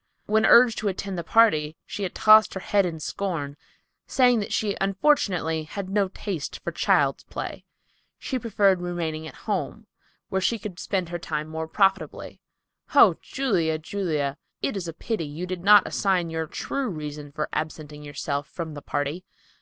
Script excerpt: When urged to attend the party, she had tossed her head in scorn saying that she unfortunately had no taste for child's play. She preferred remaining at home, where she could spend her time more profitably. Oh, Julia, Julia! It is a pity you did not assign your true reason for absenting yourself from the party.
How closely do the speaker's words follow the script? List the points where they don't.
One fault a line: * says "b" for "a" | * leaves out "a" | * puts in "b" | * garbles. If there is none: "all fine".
all fine